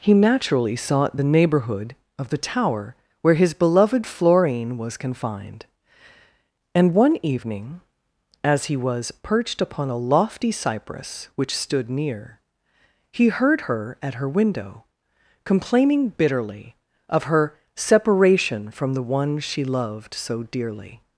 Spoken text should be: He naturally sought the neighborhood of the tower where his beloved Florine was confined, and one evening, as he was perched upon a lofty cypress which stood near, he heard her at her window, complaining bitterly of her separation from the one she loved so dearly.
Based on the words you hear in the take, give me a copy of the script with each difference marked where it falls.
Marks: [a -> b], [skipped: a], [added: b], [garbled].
He naturally sought the neighborhood of the tower where his beloved Florine was confined, and one evening, as he was perched upon a lofty cypress which stood near, he heard her at her window, complaining bitterly of her separation from the one she loved so dearly.